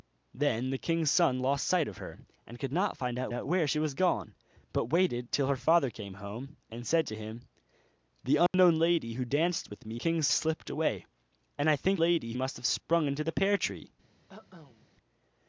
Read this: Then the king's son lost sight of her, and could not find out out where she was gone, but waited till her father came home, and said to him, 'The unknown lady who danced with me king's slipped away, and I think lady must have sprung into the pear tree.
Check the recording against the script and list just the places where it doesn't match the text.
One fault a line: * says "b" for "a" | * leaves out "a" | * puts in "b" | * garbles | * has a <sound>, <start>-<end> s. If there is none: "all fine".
* has a dropout, 8.5-8.5 s
* has a cough, 14.3-14.9 s